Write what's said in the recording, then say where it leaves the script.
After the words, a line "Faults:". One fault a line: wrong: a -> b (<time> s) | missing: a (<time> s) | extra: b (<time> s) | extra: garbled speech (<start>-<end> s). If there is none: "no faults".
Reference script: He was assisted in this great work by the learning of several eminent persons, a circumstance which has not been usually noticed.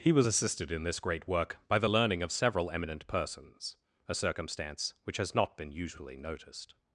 He was assisted in this great work by the learning of several eminent persons, a circumstance which has not been usually noticed.
Faults:
no faults